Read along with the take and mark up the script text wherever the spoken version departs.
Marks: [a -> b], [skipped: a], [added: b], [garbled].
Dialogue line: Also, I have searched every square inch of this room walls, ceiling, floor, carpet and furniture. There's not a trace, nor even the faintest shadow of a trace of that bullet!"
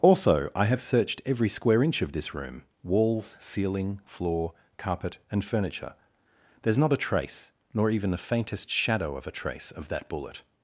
Also, I have searched every square inch of this room walls, ceiling, floor, carpet and furniture. There's not a trace, nor even the faintest shadow of a trace of that bullet!"